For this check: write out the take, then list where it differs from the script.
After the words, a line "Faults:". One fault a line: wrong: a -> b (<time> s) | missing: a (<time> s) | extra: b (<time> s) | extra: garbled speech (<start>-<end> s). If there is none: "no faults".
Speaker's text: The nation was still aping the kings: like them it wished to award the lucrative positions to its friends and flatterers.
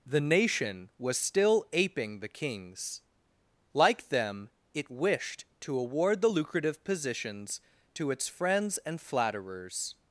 The nation was still aping the kings: like them it wished to award the lucrative positions to its friends and flatterers.
Faults:
no faults